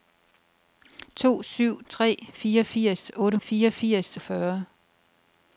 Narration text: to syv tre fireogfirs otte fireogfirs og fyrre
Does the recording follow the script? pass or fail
pass